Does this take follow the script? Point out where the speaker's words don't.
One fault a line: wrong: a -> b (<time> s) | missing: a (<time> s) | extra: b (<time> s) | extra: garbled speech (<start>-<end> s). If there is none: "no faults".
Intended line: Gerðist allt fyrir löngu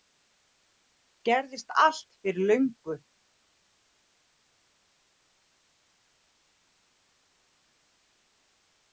no faults